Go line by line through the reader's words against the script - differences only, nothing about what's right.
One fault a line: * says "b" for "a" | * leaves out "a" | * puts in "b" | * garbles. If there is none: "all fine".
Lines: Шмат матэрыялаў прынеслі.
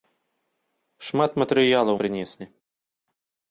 all fine